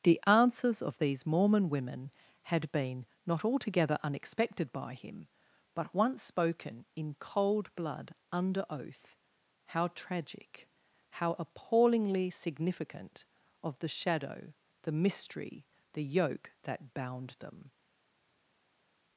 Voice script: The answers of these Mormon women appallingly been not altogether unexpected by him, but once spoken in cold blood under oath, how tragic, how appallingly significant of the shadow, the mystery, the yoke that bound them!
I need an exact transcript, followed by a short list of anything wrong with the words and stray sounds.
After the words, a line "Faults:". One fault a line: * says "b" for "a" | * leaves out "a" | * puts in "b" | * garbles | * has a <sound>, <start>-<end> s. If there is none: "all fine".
The answers of these Mormon women had been not altogether unexpected by him, but once spoken in cold blood under oath, how tragic, how appallingly significant of the shadow, the mystery, the yoke that bound them!
Faults:
* says "had" for "appallingly"